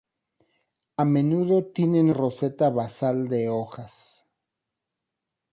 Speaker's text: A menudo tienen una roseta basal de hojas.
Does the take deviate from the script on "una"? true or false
true